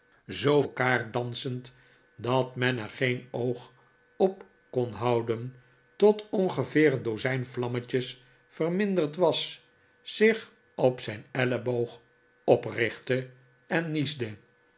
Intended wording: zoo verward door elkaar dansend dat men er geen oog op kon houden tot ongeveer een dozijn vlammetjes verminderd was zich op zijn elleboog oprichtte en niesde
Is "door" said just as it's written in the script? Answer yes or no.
no